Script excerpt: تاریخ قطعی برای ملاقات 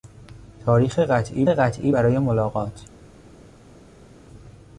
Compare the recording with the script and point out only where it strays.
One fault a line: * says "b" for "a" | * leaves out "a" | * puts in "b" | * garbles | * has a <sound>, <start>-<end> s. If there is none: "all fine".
* puts in "قطعی"